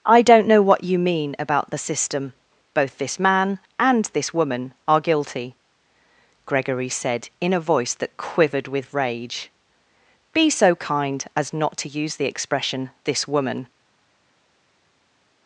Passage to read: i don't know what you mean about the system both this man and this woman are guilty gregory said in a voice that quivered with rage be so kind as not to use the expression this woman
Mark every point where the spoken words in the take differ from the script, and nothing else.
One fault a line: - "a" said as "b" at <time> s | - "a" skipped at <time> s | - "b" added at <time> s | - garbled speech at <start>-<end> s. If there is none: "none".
none